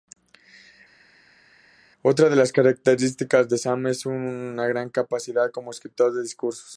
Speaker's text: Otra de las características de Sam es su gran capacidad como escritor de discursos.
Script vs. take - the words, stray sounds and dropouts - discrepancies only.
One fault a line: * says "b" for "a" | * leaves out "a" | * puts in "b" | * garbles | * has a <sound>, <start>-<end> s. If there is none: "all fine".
all fine